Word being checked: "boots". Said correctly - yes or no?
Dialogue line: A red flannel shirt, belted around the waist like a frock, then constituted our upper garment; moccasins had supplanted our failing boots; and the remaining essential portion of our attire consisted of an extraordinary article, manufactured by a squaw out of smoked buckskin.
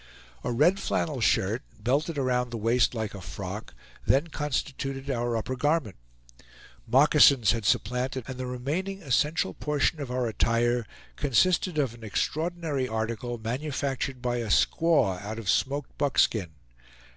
no